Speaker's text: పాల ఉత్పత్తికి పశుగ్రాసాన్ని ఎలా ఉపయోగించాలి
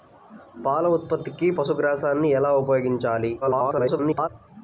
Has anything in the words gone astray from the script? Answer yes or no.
yes